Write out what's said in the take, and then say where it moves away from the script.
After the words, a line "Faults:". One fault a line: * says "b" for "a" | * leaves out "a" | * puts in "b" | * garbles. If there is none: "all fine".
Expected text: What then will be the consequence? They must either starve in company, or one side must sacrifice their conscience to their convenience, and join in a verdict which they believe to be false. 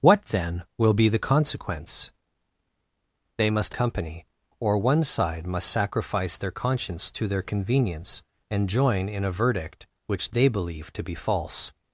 What then will be the consequence? They must company, or one side must sacrifice their conscience to their convenience, and join in a verdict which they believe to be false.
Faults:
* leaves out "either starve in"